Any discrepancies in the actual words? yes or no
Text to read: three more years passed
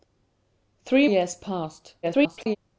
yes